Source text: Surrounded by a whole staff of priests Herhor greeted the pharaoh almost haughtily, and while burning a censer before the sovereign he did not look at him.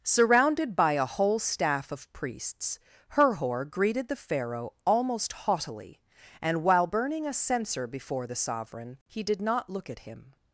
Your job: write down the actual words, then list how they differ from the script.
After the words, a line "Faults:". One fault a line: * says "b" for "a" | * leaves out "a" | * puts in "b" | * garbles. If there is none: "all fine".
Surrounded by a whole staff of priests Herhor greeted the pharaoh almost haughtily, and while burning a censer before the sovereign he did not look at him.
Faults:
all fine